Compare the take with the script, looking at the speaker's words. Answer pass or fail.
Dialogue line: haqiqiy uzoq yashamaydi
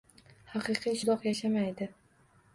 pass